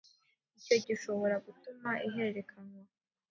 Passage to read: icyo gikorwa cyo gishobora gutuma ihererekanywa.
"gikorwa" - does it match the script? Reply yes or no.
no